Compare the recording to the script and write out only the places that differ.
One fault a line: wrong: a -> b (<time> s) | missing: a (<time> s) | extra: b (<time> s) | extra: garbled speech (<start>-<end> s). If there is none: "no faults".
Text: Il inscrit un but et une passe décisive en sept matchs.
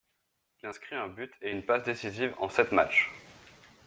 no faults